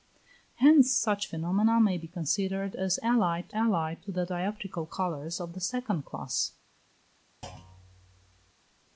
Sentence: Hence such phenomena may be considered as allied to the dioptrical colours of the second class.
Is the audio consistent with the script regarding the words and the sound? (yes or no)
no